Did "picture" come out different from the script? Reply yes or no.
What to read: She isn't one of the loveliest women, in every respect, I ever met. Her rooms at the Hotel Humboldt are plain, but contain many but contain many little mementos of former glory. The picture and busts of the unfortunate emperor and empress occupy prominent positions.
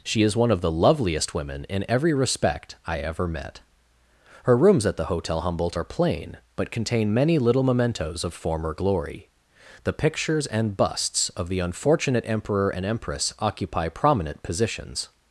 yes